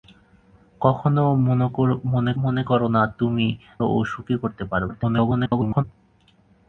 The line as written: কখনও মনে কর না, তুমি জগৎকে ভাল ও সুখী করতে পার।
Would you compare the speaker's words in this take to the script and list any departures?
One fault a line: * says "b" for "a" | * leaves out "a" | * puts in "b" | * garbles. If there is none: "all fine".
* puts in "মনে"
* leaves out "জগৎকে ভাল"
* garbles